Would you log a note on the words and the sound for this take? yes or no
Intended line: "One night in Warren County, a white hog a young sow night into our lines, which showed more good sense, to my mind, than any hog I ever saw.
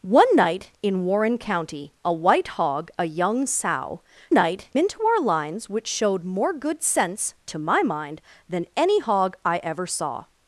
no